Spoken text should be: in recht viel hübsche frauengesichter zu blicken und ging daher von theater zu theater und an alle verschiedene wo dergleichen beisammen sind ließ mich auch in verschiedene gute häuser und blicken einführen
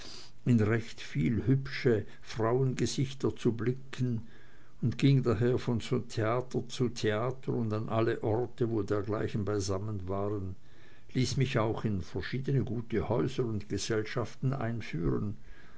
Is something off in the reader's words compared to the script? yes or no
yes